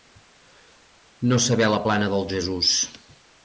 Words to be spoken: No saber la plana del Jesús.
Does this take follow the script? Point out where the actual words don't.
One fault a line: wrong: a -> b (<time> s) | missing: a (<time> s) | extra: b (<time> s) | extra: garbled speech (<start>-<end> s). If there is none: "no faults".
no faults